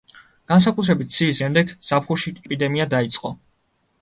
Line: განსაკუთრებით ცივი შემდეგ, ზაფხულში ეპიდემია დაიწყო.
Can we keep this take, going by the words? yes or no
yes